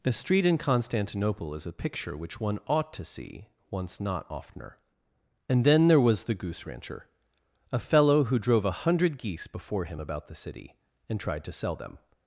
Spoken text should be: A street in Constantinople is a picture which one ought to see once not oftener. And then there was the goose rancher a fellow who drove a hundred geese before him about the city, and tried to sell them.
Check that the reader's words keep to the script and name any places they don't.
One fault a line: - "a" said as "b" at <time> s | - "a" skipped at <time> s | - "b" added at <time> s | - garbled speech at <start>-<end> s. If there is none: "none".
none